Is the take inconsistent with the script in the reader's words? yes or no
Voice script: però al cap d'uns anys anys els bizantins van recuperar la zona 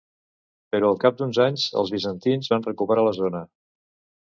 yes